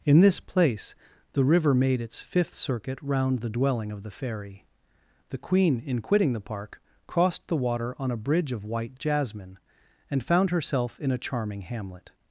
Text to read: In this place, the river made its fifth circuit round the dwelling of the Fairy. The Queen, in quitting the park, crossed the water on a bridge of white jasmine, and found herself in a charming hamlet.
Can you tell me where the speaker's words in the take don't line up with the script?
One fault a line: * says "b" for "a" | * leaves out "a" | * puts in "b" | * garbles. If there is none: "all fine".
all fine